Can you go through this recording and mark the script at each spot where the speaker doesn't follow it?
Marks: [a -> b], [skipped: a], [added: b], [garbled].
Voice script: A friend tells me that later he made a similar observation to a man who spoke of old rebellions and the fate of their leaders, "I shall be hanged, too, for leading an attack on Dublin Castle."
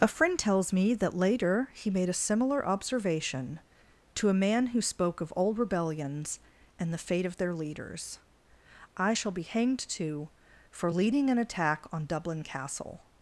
A friend tells me that later he made a similar observation to a man who spoke of old rebellions and the fate of their leaders, "I shall be hanged, too, for leading an attack on Dublin Castle."